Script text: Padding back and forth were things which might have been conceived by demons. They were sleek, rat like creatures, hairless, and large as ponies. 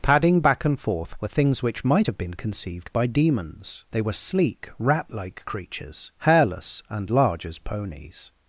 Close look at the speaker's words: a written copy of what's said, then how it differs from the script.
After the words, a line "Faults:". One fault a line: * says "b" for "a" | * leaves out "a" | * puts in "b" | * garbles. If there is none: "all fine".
Padding back and forth were things which might have been conceived by demons. They were sleek, rat like creatures, hairless, and large as ponies.
Faults:
all fine